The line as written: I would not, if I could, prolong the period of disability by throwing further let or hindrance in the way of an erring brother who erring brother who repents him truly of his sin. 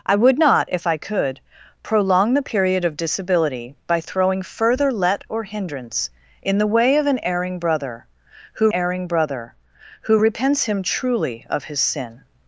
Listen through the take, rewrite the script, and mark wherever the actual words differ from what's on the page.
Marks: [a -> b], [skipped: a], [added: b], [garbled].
I would not, if I could, prolong the period of disability by throwing further let or hindrance in the way of an erring brother who erring brother who repents him truly of his sin.